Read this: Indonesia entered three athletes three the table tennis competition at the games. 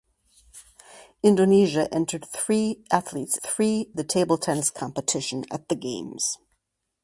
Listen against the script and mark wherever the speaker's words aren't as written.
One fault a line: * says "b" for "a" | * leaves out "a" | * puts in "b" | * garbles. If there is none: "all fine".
all fine